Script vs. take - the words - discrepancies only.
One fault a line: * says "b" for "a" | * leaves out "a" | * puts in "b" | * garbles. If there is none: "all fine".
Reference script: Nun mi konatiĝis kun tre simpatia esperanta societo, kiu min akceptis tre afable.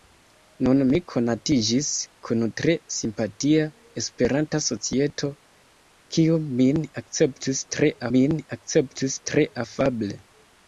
* puts in "min akceptis tre"